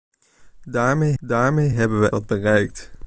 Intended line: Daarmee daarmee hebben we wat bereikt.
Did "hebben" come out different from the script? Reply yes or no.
no